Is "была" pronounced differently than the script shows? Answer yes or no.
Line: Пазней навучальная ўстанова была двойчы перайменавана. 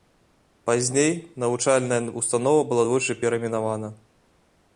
no